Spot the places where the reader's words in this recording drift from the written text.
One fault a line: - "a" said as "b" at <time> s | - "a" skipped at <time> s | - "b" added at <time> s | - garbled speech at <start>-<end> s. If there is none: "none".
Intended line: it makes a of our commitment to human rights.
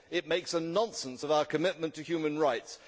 - "nonsense" added at 0.6 s